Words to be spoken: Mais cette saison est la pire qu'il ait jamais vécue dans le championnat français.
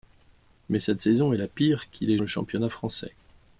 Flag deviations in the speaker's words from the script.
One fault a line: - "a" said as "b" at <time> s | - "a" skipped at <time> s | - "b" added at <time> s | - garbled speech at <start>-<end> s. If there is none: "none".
- "jamais vécue dans" skipped at 2.2 s